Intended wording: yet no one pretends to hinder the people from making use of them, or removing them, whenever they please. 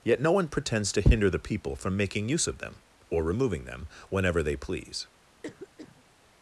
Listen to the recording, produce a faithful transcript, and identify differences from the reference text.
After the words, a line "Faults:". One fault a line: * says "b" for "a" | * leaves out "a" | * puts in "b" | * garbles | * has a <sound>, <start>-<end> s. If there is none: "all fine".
yet no one pretends to hinder the people from making use of them, or removing them, whenever they please.
Faults:
* has a cough, 5.4-6.0 s